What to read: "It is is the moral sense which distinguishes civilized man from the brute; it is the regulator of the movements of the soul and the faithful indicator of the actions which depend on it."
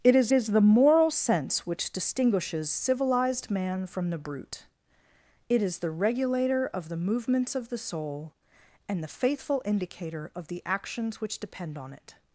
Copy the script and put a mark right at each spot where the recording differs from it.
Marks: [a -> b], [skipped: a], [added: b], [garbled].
"It is is the moral sense which distinguishes civilized man from the brute; it is the regulator of the movements of the soul and the faithful indicator of the actions which depend on it."